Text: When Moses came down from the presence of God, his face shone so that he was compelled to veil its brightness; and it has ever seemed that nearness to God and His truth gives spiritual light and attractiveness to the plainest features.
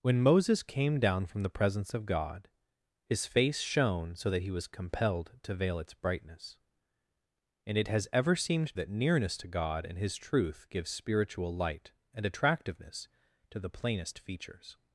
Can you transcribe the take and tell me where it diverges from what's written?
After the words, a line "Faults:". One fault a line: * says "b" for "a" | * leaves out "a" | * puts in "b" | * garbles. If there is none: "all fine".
When Moses came down from the presence of God, his face shone so that he was compelled to veil its brightness; and it has ever seemed that nearness to God and His truth gives spiritual light and attractiveness to the plainest features.
Faults:
all fine